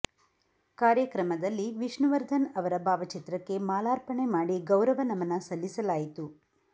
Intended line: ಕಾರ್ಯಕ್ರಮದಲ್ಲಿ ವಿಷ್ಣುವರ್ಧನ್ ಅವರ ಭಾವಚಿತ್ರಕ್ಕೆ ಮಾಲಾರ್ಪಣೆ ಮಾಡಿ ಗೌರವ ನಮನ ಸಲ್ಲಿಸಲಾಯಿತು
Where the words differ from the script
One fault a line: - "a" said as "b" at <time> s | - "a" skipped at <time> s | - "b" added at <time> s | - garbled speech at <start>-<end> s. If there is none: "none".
none